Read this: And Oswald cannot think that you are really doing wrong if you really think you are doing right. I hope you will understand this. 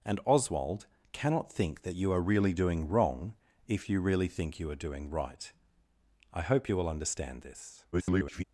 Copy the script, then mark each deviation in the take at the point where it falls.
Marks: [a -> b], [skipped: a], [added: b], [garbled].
And Oswald cannot think that you are really doing wrong if you really think you are doing right. I hope you will understand this. [garbled]